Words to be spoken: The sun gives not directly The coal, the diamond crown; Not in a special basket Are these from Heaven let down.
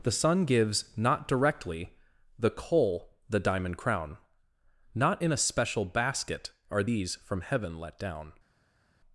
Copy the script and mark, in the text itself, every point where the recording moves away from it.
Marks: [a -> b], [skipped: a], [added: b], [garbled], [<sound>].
The sun gives not directly The coal, the diamond crown; Not in a special basket Are these from Heaven let down.